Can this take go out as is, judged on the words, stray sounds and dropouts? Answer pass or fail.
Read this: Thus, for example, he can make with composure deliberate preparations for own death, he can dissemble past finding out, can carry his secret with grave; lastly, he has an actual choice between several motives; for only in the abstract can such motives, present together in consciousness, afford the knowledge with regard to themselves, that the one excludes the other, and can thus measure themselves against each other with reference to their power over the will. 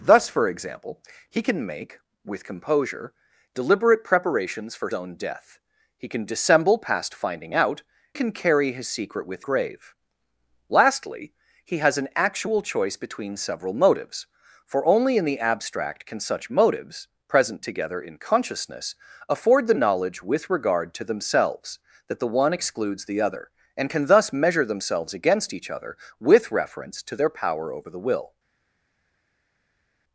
pass